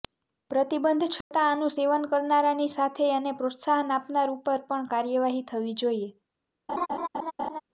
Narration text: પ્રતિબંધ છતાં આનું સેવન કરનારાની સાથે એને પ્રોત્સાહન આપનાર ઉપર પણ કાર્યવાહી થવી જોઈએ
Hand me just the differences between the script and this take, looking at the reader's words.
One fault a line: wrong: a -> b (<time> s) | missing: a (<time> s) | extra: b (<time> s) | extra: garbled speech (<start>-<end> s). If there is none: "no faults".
no faults